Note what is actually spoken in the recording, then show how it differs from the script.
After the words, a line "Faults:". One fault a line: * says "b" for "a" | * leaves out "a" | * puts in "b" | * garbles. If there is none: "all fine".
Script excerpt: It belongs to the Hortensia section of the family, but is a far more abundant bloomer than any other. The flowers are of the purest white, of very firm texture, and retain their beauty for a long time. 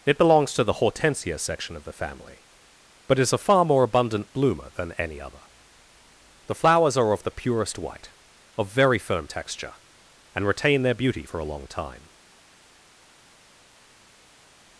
It belongs to the Hortensia section of the family, but is a far more abundant bloomer than any other. The flowers are of the purest white, of very firm texture, and retain their beauty for a long time.
Faults:
all fine